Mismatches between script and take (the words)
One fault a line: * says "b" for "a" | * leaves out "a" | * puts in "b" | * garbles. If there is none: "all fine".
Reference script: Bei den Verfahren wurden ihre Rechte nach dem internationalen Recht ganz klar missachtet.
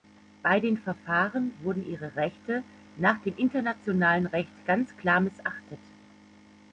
all fine